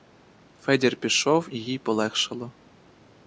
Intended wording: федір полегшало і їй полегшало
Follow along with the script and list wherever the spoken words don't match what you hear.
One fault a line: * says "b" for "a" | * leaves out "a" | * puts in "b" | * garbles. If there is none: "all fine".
* says "пішов" for "полегшало"